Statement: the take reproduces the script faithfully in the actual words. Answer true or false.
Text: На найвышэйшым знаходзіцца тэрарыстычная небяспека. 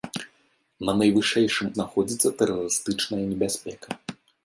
true